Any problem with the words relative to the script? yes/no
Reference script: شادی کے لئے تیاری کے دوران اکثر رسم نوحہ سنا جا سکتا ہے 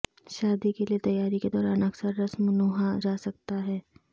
yes